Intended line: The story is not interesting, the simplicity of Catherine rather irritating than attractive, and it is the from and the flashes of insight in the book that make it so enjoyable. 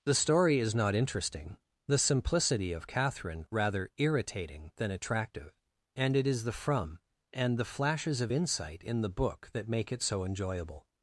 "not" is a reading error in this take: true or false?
false